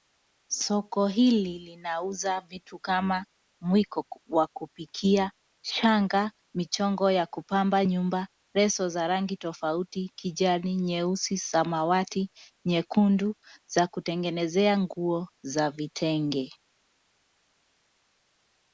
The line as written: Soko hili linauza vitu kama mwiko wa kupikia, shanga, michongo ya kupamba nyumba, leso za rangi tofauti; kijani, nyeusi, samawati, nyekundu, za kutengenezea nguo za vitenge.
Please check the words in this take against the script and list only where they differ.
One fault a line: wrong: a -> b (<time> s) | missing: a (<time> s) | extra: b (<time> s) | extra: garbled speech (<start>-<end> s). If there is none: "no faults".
no faults